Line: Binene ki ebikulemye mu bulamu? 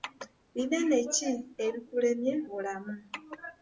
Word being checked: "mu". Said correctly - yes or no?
no